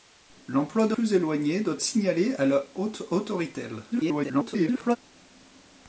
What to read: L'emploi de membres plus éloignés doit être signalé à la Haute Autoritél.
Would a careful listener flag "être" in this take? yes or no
yes